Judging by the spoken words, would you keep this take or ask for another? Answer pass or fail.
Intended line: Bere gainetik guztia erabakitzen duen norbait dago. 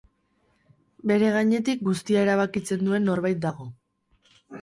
pass